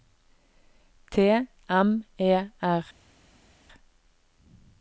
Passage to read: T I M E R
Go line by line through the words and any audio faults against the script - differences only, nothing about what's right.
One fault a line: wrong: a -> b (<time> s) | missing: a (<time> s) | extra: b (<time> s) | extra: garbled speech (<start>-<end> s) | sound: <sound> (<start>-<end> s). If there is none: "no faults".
missing: I (1.3 s)